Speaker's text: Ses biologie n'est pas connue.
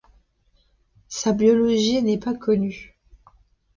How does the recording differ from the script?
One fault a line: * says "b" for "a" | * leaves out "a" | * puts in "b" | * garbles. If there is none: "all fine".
* says "Sa" for "Ses"